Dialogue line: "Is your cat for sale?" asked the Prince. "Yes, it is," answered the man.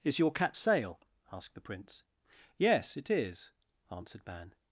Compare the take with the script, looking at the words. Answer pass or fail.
fail